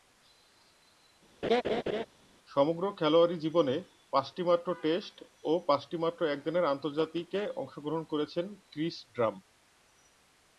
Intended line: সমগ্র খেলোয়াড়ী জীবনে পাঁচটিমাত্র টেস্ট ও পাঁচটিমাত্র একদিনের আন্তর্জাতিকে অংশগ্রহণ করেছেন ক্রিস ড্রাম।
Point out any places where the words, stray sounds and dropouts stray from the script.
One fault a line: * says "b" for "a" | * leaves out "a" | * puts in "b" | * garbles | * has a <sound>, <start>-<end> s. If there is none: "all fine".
* has a laugh, 1.4-2.1 s